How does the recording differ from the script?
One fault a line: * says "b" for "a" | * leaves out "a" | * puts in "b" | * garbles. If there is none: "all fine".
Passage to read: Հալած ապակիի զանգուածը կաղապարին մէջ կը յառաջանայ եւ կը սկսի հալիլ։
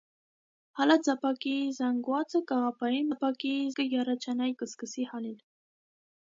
* says "ապակիի" for "մէջ"
* leaves out "եւ"